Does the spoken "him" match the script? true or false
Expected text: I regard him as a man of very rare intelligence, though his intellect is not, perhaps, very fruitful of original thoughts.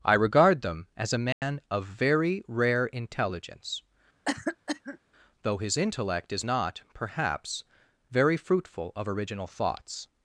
false